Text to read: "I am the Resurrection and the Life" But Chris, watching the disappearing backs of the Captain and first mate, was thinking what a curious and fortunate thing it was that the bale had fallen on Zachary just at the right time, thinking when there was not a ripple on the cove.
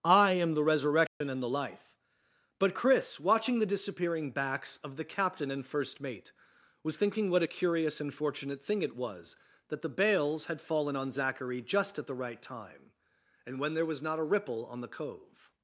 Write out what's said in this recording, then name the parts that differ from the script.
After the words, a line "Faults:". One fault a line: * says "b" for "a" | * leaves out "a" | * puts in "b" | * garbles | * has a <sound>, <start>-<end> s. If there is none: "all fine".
"I am the Resurrection and the Life" But Chris, watching the disappearing backs of the Captain and first mate, was thinking what a curious and fortunate thing it was that the bales had fallen on Zachary just at the right time, and when there was not a ripple on the cove.
Faults:
* has a dropout, 1.1-1.2 s
* says "bales" for "bale"
* says "and" for "thinking"